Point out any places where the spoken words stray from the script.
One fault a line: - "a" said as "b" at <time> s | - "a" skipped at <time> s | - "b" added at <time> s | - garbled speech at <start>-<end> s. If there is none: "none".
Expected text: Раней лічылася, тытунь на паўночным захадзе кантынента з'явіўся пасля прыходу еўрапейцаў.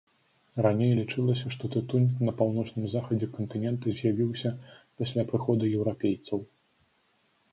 - "што" added at 1.5 s